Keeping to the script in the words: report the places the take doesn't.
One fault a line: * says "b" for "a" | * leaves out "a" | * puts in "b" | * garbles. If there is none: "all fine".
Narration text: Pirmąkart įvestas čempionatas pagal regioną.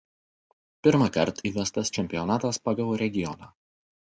all fine